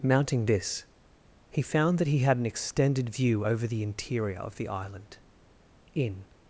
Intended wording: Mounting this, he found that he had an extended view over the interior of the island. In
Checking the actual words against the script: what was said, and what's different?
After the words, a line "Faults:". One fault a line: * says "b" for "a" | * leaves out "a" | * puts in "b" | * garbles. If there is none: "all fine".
Mounting this, he found that he had an extended view over the interior of the island. In
Faults:
all fine